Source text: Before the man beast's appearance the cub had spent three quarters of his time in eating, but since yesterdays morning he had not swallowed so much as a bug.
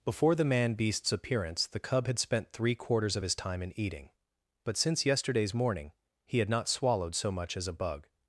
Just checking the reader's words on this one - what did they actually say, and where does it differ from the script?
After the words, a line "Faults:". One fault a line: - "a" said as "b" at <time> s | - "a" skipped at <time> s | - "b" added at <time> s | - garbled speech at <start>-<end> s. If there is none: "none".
Before the man beast's appearance the cub had spent three quarters of his time in eating, but since yesterdays morning he had not swallowed so much as a bug.
Faults:
none